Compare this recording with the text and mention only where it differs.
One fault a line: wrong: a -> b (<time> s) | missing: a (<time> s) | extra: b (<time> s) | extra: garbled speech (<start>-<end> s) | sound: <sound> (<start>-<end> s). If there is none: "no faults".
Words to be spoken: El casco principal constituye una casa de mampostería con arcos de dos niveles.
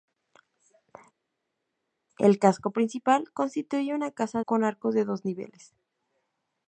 missing: de mampostería (4.4 s)